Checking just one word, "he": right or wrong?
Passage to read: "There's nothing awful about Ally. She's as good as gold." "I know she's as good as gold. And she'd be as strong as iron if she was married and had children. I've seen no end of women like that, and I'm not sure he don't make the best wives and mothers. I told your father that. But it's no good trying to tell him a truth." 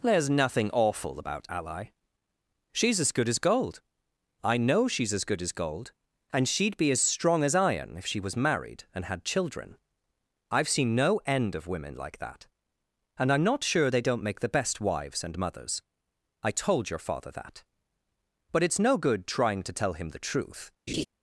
wrong